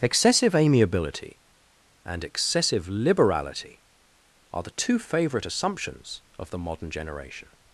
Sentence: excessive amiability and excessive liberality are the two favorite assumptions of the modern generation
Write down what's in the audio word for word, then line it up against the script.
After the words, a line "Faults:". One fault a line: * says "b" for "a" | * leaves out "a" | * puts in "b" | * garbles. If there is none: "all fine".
excessive amiability and excessive liberality are the two favorite assumptions of the modern generation
Faults:
all fine